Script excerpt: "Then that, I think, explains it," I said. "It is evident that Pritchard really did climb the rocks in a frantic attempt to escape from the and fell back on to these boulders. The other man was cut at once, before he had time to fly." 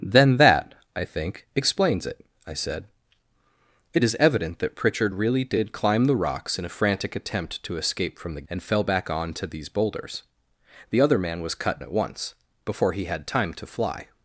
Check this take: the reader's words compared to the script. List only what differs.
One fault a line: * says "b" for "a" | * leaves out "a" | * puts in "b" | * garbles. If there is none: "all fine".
all fine